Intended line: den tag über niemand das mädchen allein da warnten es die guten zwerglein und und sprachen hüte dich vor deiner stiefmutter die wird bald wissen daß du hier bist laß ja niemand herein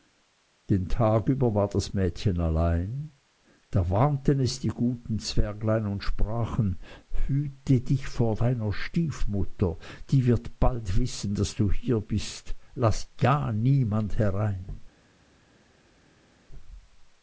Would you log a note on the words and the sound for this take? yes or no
yes